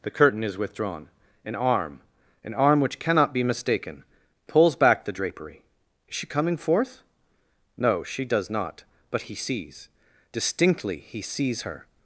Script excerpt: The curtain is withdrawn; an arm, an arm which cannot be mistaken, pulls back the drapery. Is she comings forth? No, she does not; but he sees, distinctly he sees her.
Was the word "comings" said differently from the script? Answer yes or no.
yes